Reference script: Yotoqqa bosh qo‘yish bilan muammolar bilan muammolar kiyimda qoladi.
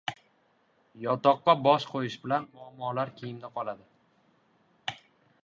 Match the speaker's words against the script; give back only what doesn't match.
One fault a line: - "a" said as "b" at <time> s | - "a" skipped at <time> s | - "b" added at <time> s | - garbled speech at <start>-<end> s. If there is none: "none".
- "bilan muammolar" skipped at 3.1 s